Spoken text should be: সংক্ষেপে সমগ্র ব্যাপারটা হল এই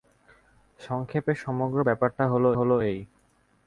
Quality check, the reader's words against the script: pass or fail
fail